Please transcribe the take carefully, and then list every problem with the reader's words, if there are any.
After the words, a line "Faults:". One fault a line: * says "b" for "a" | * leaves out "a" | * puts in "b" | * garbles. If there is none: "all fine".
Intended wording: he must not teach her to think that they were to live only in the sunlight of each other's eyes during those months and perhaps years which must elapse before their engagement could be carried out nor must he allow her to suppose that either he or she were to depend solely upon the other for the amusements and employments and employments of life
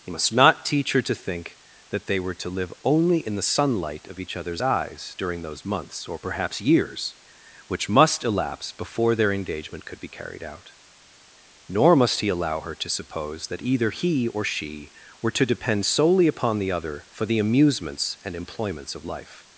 he must not teach her to think that they were to live only in the sunlight of each other's eyes during those months or perhaps years which must elapse before their engagement could be carried out nor must he allow her to suppose that either he or she were to depend solely upon the other for the amusements and employments of life
Faults:
* says "or" for "and"
* leaves out "and employments"